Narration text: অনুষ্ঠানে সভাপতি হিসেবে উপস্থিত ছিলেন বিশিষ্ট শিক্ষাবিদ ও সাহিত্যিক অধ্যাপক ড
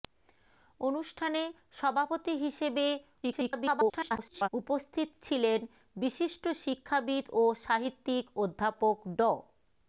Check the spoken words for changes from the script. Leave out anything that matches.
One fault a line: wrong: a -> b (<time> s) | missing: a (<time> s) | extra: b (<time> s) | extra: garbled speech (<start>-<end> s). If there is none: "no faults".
extra: garbled speech (3.2-4.5 s)